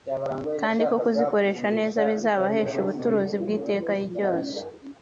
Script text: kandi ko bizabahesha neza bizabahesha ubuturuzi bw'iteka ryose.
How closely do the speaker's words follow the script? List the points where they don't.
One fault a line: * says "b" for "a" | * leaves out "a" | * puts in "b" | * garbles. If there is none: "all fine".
* says "kuzikoresha" for "bizabahesha"